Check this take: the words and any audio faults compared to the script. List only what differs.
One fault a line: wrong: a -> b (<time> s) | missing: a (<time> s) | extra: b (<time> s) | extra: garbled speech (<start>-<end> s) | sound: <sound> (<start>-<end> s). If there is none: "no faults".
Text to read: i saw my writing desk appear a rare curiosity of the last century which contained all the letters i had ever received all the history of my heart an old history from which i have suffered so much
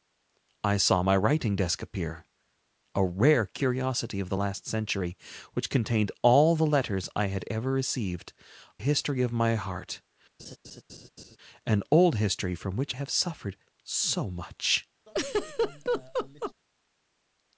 missing: all the (8.3 s)
sound: laugh (10.4-11.4 s)
missing: i (12.9 s)
sound: laugh (15.1-16.5 s)